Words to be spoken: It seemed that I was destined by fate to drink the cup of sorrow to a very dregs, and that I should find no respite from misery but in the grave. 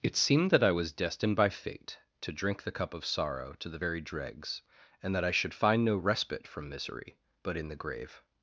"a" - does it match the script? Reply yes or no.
no